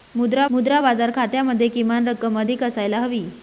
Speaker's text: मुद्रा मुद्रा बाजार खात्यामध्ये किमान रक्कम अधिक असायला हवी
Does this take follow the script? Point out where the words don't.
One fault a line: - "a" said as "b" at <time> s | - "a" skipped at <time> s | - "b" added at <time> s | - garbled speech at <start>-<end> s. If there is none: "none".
none